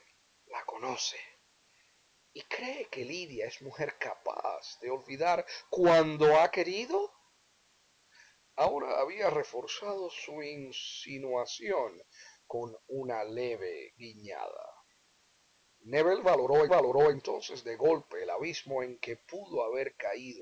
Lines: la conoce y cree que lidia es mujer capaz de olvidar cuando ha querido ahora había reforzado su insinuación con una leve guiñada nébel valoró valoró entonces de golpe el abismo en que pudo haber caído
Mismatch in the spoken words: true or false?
false